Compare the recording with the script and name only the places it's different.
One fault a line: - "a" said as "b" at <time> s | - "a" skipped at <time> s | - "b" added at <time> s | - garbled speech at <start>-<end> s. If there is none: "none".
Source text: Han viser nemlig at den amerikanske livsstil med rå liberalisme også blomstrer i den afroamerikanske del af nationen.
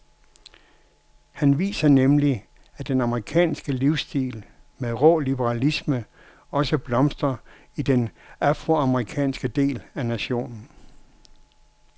none